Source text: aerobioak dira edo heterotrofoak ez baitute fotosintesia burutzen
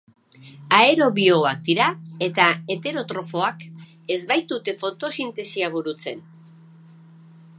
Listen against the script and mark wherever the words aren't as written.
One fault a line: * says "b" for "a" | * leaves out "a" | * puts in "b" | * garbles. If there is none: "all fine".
* says "eta" for "edo"